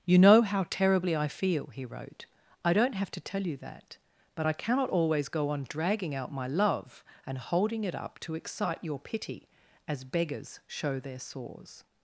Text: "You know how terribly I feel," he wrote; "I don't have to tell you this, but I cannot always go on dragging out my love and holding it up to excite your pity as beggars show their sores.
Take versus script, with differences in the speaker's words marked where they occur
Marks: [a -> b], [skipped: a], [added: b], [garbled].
"You know how terribly I feel," he wrote; "I don't have to tell you [this, -> that] but I cannot always go on dragging out my love and holding it up to excite your pity as beggars show their sores.